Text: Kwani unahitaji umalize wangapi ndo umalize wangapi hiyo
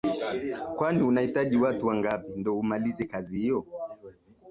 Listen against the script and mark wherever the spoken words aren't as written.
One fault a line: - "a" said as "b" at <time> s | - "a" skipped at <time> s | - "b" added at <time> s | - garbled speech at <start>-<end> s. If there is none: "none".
- "umalize" said as "watu" at 1.6 s
- "wangapi" said as "kazi" at 3.0 s